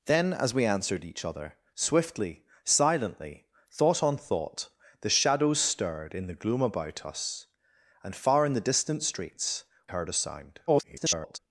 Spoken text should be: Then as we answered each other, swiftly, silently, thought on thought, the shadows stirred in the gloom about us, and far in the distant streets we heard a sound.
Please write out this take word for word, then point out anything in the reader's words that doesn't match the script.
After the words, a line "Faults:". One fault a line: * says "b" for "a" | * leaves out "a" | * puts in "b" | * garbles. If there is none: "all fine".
Then as we answered each other, swiftly, silently, thought on thought, the shadows stirred in the gloom about us, and far in the distant streets heard a sound. [garbled]
Faults:
* leaves out "we"
* garbles